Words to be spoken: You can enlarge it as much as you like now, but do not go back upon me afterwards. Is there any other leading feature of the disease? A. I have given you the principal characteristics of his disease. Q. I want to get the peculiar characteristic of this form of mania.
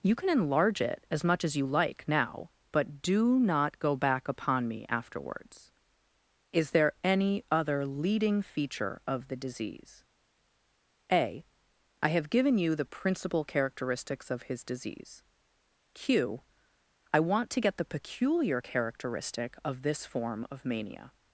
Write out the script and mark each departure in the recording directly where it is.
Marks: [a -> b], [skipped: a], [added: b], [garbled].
You can enlarge it as much as you like now, but do not go back upon me afterwards. Is there any other leading feature of the disease? A. I have given you the principal characteristics of his disease. Q. I want to get the peculiar characteristic of this form of mania.